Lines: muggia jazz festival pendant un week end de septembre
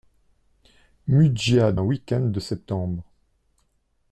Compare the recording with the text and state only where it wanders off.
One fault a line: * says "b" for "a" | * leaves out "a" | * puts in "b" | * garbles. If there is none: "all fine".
* leaves out "jazz festival pendant"